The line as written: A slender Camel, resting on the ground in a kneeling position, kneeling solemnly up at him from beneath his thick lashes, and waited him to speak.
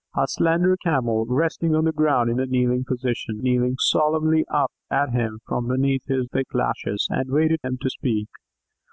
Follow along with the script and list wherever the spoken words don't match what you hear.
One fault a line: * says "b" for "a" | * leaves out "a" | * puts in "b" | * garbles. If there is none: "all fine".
all fine